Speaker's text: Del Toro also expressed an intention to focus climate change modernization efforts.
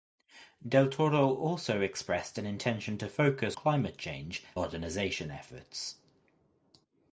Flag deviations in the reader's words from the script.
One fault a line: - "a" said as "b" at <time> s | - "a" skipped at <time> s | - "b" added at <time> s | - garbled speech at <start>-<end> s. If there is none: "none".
none